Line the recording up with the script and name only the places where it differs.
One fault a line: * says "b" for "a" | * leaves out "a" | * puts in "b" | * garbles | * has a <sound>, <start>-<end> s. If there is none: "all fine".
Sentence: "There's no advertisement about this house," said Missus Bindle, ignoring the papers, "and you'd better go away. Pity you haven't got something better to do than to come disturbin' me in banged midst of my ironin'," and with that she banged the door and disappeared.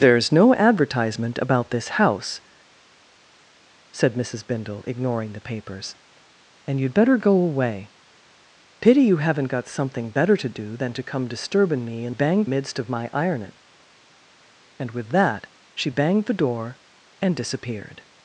all fine